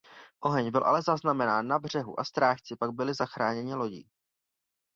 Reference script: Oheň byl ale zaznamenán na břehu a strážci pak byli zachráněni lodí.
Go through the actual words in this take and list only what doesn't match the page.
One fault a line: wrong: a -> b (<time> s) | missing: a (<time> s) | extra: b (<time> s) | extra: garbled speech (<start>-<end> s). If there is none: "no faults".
no faults